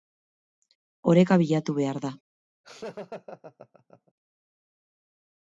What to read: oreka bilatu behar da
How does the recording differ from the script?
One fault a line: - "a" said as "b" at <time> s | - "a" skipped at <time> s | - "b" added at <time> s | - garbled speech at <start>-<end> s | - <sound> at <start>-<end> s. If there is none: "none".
- laugh at 2.6-4.1 s